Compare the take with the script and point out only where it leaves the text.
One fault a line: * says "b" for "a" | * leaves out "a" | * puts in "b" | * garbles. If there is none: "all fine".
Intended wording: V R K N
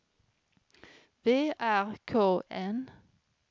all fine